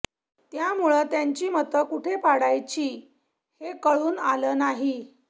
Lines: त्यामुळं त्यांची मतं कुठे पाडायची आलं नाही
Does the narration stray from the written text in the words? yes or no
yes